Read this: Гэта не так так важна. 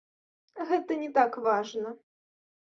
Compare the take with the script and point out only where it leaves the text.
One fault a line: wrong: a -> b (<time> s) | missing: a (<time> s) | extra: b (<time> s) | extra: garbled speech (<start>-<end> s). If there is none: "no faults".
missing: так (1.4 s)